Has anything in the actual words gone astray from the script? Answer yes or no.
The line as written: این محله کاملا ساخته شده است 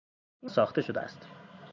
yes